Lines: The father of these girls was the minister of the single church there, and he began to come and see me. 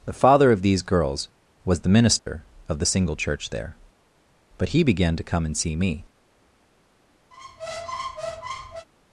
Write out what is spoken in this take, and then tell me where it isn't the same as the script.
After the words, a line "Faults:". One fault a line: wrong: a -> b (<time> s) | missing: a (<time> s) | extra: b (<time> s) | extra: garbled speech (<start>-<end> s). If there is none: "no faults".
The father of these girls was the minister of the single church there, but he began to come and see me.
Faults:
wrong: and -> but (4.6 s)